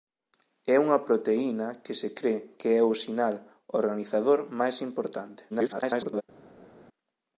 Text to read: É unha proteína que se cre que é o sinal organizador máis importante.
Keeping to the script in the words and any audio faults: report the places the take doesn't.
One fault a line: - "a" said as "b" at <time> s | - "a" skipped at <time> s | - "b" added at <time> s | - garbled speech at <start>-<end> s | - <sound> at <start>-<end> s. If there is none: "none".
- garbled speech at 5.5-6.2 s